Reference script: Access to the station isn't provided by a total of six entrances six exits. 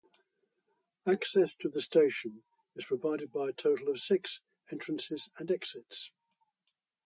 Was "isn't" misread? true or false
true